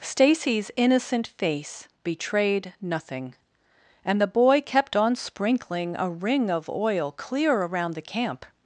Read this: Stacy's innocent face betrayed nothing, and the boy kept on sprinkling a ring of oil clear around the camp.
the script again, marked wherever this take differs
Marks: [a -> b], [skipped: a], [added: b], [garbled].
Stacy's innocent face betrayed nothing, and the boy kept on sprinkling a ring of oil clear around the camp.